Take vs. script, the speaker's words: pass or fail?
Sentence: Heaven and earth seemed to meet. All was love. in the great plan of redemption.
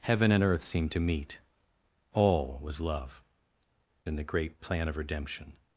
pass